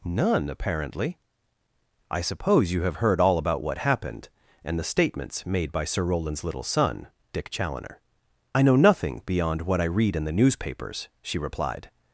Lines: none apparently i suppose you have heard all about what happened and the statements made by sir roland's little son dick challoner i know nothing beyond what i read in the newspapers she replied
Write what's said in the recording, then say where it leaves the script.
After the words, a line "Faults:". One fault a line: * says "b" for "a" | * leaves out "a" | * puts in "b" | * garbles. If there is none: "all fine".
none apparently i suppose you have heard all about what happened and the statements made by sir roland's little son dick challoner i know nothing beyond what i read in the newspapers she replied
Faults:
all fine